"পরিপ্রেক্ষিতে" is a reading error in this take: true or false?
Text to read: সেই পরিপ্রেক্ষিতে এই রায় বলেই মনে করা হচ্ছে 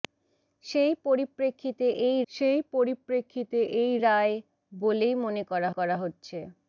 false